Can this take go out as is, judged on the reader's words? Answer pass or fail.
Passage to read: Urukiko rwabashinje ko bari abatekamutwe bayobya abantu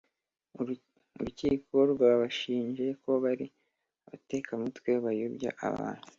pass